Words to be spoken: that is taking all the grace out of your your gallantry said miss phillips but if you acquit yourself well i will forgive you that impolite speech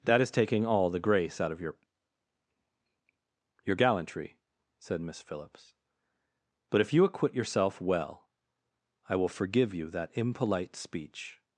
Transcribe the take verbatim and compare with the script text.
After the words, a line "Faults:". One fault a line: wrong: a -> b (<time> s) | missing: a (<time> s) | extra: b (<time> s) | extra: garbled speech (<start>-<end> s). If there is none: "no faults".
that is taking all the grace out of your your gallantry said miss phillips but if you acquit yourself well i will forgive you that impolite speech
Faults:
no faults